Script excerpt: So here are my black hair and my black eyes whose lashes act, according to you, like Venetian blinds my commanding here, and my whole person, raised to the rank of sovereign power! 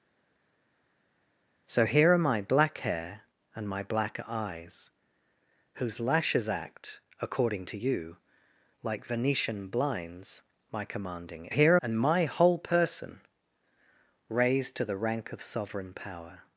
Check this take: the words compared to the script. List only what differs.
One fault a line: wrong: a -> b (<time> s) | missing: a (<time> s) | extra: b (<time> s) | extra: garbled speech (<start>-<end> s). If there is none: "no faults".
no faults